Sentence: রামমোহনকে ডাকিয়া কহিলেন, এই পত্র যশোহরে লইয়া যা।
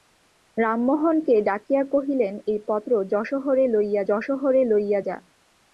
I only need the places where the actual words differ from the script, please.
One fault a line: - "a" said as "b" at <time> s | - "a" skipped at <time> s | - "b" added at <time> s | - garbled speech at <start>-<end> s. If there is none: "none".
- "যশোহরে লইয়া" added at 4.1 s